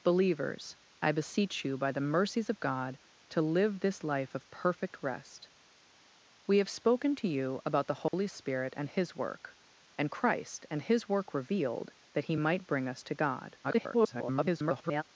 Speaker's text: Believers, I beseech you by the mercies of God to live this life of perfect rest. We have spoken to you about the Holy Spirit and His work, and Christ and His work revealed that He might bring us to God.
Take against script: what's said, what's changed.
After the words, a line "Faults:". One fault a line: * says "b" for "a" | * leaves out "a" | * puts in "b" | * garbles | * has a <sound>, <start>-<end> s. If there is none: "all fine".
Believers, I beseech you by the mercies of God to live this life of perfect rest. We have spoken to you about the Holy Spirit and His work, and Christ and His work revealed that He might bring us to God. [garbled]
Faults:
* has a dropout, 8.1-8.1 s
* garbles